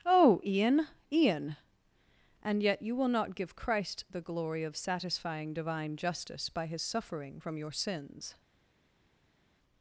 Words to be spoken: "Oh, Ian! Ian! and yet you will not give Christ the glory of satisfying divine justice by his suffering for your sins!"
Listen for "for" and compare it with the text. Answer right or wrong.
wrong